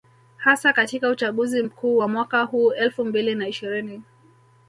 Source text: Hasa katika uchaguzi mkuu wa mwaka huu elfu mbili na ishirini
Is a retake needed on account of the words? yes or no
no